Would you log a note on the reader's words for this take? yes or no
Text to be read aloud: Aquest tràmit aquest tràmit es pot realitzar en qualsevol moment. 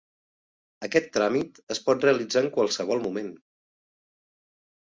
yes